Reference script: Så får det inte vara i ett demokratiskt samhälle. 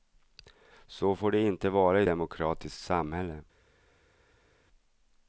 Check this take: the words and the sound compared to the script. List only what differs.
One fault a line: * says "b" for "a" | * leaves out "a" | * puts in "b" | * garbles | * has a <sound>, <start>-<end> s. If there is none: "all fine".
* leaves out "ett"